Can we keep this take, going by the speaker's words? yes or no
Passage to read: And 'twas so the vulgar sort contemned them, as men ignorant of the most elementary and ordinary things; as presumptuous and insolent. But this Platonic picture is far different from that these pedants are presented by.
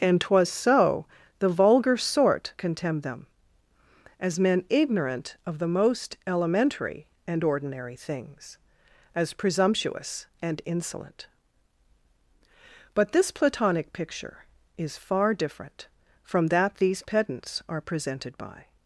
yes